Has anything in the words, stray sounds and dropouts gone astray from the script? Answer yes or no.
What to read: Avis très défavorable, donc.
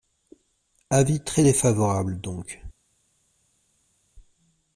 no